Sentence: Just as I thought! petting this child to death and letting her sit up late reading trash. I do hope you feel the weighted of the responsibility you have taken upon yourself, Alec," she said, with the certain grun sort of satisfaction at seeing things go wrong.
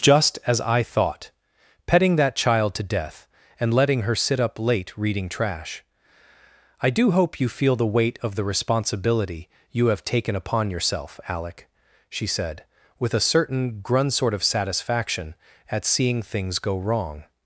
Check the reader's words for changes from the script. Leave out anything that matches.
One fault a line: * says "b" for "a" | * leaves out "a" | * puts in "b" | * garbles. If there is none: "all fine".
* says "that" for "this"
* says "weight" for "weighted"
* says "a" for "the"